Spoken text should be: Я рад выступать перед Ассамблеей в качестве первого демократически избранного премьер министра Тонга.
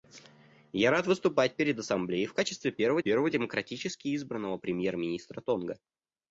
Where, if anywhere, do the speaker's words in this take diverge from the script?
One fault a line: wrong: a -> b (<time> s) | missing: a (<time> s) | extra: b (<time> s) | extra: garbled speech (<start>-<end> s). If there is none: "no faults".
extra: первого (3.0 s)